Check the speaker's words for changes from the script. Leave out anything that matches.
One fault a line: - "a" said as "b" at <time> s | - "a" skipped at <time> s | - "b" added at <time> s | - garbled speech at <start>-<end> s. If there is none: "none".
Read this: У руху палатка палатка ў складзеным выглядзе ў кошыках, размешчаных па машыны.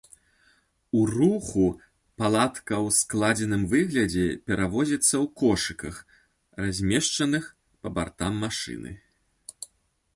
- "палатка" skipped at 2.8 s
- "перавозіцца" added at 4.5 s
- "бартам" added at 8.0 s